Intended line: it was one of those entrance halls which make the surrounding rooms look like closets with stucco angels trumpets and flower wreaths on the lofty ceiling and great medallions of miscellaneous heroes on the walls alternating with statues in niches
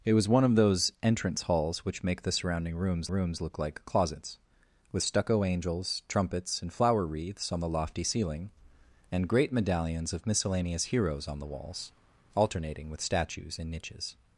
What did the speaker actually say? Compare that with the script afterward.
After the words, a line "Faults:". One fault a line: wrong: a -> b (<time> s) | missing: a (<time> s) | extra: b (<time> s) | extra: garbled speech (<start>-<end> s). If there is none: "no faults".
it was one of those entrance halls which make the surrounding rooms rooms look like closets with stucco angels trumpets and flower wreaths on the lofty ceiling and great medallions of miscellaneous heroes on the walls alternating with statues in niches
Faults:
extra: rooms (3.1 s)